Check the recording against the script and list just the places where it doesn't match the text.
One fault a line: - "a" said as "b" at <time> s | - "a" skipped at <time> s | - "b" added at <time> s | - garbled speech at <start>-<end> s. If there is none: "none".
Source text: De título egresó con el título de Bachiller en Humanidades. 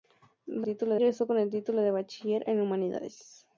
none